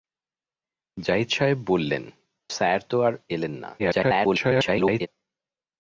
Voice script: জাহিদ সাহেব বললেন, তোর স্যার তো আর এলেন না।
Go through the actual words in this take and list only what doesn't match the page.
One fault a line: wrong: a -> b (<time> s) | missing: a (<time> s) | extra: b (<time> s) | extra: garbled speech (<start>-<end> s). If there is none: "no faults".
missing: তোর (2.0 s)
extra: garbled speech (3.8-5.1 s)